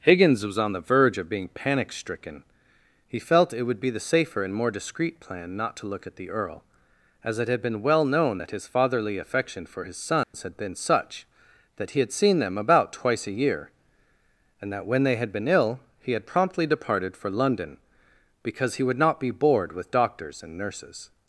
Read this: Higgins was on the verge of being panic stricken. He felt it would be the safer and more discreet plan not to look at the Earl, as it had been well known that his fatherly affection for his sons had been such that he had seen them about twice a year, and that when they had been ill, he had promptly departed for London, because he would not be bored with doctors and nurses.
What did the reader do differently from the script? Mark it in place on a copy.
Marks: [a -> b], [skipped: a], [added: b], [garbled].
Higgins was on the verge of being panic stricken. He felt it would be the safer and more discreet plan not to look at the Earl, as it had been well known that his fatherly affection for his sons had been such that he had seen them about twice a year, and that when they had been ill, he had promptly departed for London, because he would not be bored with doctors and nurses.